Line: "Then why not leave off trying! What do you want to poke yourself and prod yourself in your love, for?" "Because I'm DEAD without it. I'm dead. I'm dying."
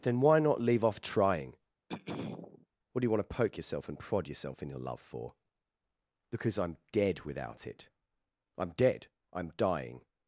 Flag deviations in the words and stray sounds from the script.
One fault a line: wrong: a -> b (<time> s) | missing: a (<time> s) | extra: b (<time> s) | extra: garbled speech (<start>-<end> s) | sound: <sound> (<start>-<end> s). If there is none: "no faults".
sound: throat clearing (1.9-2.7 s)